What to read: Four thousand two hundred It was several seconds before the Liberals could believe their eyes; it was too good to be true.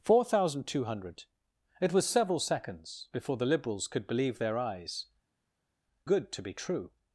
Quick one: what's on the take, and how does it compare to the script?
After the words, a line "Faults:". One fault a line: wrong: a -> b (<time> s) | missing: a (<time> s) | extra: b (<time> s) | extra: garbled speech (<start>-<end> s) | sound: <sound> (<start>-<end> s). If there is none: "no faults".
Four thousand two hundred It was several seconds before the Liberals could believe their eyes; good to be true.
Faults:
missing: it was too (5.0 s)